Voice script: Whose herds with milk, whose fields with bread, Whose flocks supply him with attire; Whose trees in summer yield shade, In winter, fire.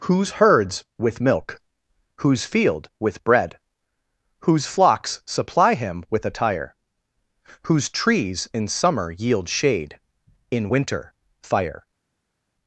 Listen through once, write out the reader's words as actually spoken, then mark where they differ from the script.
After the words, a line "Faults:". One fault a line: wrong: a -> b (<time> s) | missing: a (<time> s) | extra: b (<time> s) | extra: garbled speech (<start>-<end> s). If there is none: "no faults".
Whose herds with milk, whose field with bread, Whose flocks supply him with attire; Whose trees in summer yield shade, In winter, fire.
Faults:
wrong: fields -> field (2.4 s)